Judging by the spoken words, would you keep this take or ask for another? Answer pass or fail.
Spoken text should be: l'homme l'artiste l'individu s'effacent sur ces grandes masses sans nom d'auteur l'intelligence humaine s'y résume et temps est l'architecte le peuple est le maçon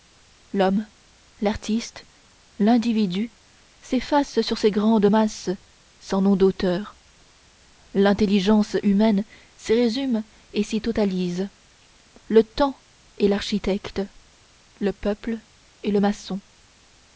fail